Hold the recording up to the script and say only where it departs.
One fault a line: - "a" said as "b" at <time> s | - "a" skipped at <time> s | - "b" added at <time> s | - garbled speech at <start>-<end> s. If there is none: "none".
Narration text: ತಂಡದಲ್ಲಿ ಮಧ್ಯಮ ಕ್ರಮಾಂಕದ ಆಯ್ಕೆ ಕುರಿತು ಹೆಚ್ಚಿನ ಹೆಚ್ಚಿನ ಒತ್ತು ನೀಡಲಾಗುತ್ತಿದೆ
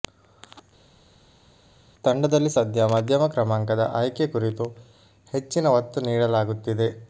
- "ಸದ್ಯ" added at 2.5 s
- "ಹೆಚ್ಚಿನ" skipped at 5.7 s